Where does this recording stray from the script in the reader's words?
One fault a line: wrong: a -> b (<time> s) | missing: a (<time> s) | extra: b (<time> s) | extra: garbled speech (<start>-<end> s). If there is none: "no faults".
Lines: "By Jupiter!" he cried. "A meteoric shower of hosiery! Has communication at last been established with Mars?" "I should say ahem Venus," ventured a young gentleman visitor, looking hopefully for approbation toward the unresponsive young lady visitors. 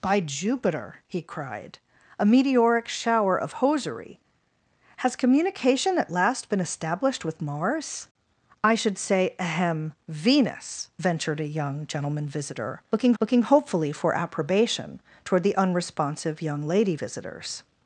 extra: looking (13.2 s)